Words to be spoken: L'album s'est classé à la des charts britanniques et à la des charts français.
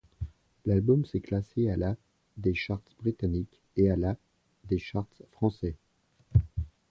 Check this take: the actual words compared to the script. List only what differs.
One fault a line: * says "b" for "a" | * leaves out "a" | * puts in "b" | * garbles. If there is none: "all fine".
all fine